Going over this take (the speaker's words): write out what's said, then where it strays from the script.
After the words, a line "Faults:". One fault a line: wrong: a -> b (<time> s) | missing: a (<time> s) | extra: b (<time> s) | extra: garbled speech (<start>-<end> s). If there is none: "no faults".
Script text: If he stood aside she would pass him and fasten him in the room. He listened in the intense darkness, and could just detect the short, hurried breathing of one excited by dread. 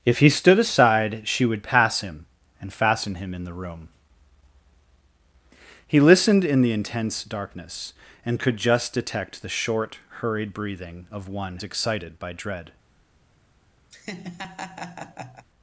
If he stood aside she would pass him and fasten him in the room. He listened in the intense darkness, and could just detect the short, hurried breathing of one excited by dread.
Faults:
no faults